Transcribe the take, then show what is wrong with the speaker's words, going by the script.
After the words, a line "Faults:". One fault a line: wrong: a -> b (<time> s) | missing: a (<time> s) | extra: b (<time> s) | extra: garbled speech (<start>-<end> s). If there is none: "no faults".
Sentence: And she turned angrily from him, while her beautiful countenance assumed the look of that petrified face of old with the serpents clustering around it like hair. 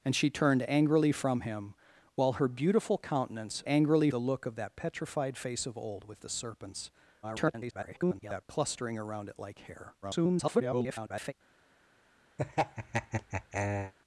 And she turned angrily from him, while her beautiful countenance angrily the look of that petrified face of old with the serpents [garbled] clustering around it like hair. [garbled]
Faults:
wrong: assumed -> angrily (3.7 s)
extra: garbled speech (7.2-8.5 s)
extra: garbled speech (10.0-11.3 s)